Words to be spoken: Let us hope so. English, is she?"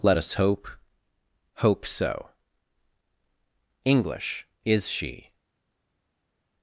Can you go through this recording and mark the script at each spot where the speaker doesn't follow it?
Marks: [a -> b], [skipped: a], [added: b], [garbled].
Let us hope [added: hope] so. English, is she?"